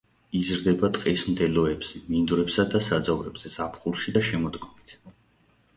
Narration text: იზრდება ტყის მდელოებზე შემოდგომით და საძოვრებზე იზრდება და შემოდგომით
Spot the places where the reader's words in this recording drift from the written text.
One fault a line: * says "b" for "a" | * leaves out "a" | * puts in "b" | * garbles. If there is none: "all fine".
* says "მინდვრებსა" for "შემოდგომით"
* says "ზაფხულში" for "იზრდება"